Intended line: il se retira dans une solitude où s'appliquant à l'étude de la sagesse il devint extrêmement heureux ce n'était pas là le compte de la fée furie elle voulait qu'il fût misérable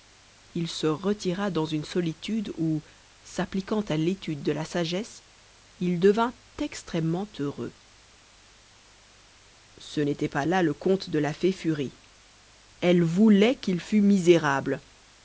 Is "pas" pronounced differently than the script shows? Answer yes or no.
no